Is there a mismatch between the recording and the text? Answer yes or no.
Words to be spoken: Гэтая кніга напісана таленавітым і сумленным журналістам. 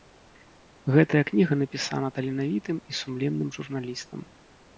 no